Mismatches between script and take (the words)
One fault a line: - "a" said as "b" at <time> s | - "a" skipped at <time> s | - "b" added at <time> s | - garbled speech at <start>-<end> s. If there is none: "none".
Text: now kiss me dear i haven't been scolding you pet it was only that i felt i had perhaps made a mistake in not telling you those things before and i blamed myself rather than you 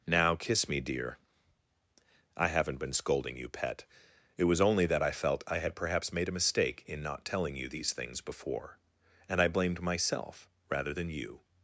- "those" said as "these" at 7.7 s